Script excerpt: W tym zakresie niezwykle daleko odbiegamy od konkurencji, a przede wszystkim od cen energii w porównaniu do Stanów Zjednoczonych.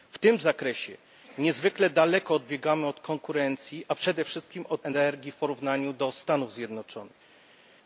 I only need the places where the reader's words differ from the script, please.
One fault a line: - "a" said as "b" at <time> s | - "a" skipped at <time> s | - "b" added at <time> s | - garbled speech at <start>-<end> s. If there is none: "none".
- "cen" skipped at 4.8 s